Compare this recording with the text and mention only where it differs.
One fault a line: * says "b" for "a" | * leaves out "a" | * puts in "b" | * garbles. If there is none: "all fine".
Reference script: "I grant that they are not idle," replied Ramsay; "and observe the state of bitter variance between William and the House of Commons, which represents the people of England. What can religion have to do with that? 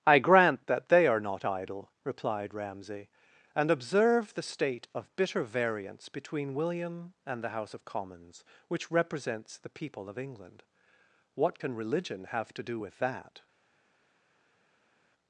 all fine